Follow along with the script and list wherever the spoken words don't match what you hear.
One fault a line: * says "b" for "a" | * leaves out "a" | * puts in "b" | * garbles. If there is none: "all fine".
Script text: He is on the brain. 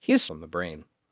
all fine